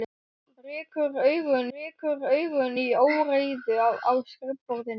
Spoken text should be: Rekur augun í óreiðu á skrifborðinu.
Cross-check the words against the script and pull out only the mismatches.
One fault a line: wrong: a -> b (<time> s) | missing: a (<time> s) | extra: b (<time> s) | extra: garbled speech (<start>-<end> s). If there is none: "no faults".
extra: rekur augun (1.7 s)